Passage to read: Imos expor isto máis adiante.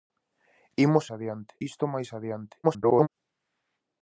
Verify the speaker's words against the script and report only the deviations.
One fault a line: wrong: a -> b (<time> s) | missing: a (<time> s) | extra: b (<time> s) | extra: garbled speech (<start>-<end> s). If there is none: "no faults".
wrong: expor -> adiante (1.2 s)
extra: garbled speech (2.6-3.1 s)